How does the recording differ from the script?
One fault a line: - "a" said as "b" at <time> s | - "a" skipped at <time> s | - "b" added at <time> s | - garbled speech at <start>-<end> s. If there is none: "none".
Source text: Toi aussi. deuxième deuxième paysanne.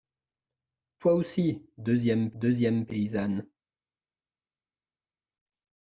none